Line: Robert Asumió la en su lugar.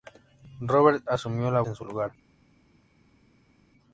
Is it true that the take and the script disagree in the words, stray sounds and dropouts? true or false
false